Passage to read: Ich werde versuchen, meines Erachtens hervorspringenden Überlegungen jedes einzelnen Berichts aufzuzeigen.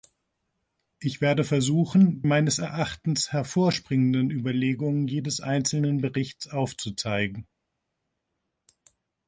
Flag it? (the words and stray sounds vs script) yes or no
no